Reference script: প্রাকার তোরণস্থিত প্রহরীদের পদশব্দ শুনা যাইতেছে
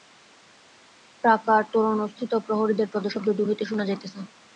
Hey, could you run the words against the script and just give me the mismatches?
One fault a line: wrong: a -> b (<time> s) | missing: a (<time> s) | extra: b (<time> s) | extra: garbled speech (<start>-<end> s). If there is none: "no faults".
extra: দূর হইতে (3.4 s)